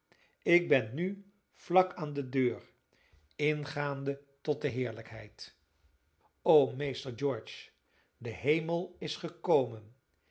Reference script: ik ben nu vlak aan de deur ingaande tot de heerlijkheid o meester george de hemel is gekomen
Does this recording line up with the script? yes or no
yes